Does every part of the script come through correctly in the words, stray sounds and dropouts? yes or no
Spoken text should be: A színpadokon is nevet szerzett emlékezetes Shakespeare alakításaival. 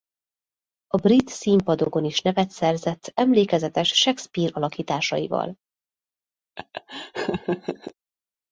no